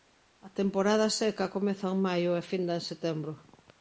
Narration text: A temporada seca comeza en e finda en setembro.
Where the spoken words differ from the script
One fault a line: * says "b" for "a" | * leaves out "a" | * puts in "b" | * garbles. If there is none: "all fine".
* puts in "maio"